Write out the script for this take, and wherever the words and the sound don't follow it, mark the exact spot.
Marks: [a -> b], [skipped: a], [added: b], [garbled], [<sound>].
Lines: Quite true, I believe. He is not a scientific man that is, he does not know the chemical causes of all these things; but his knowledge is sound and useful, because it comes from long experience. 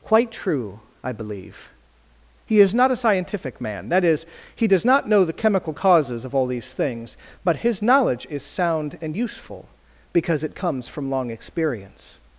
Quite true, I believe. He is not a scientific man that is, he does not know the chemical causes of all these things; but his knowledge is sound and useful, because it comes from long experience.